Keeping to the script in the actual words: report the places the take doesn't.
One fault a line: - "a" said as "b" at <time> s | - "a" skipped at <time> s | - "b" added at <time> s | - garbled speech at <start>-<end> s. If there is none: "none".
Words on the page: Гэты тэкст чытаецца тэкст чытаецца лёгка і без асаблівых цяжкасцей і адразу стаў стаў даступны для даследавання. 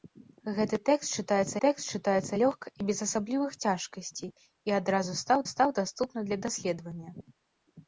none